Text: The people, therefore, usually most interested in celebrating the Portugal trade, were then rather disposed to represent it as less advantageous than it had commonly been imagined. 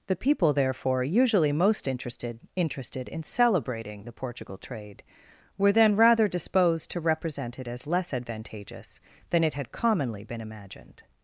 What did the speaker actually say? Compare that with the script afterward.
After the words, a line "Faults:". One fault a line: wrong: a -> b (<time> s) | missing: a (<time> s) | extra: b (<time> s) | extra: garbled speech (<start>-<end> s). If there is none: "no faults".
The people, therefore, usually most interested interested in celebrating the Portugal trade, were then rather disposed to represent it as less advantageous than it had commonly been imagined.
Faults:
extra: interested (2.5 s)